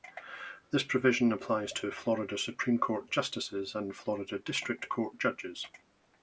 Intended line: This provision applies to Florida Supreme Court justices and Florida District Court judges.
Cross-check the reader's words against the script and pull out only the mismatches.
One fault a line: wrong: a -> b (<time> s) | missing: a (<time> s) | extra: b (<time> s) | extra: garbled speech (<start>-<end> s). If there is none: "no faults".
no faults